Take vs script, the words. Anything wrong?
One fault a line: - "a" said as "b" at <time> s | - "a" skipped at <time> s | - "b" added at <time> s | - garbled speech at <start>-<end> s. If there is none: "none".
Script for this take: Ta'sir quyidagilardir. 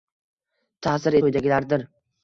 none